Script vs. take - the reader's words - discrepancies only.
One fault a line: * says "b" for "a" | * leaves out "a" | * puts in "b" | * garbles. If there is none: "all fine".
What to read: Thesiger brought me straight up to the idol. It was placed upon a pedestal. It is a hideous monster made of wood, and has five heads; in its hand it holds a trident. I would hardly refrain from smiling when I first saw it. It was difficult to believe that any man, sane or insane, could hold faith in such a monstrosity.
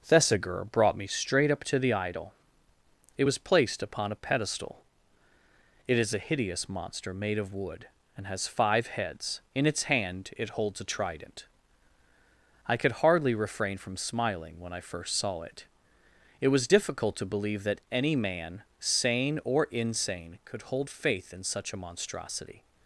* says "could" for "would"